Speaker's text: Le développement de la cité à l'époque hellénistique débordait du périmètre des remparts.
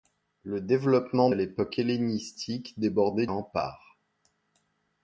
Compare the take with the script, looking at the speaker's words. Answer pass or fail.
fail